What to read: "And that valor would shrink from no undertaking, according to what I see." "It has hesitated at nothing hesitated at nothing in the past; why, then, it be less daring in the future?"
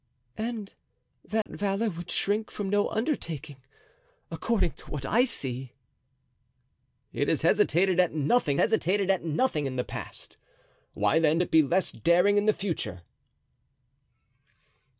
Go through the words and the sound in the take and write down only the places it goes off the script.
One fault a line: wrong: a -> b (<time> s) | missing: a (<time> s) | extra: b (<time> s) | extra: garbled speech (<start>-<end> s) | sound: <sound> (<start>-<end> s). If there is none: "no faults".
sound: dropout (1.4-1.5 s)